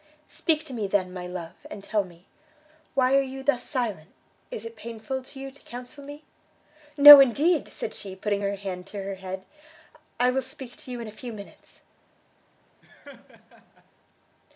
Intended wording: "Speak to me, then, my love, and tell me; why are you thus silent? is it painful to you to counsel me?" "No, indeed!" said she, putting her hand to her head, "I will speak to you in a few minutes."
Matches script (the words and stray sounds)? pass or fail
fail